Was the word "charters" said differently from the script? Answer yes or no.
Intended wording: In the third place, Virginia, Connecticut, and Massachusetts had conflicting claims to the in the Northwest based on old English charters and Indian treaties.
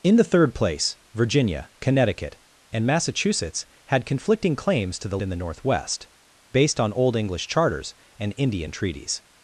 no